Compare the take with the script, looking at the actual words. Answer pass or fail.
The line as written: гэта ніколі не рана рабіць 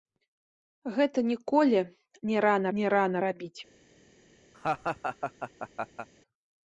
fail